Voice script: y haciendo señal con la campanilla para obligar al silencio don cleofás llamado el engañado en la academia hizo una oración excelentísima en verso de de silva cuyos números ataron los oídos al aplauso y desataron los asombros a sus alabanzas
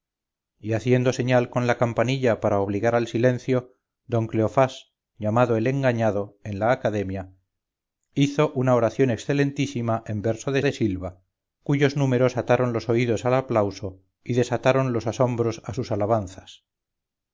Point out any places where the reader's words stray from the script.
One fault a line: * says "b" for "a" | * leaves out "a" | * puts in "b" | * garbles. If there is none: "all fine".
all fine